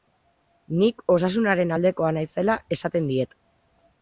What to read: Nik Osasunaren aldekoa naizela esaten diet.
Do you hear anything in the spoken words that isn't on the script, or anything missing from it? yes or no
no